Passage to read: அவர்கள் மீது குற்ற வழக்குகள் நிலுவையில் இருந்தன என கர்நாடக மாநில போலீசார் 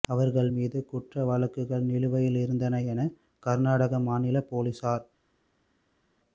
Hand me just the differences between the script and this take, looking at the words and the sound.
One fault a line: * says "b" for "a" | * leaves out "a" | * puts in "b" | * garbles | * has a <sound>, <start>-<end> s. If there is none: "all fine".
all fine